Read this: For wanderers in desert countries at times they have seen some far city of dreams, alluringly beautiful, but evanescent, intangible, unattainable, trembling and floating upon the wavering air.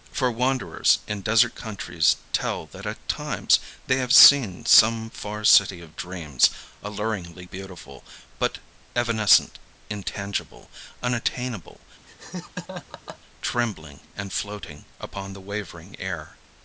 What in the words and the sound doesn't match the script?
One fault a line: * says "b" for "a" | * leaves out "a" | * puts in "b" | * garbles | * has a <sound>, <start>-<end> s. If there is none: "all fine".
* puts in "tell that"
* has a laugh, 12.1-13.2 s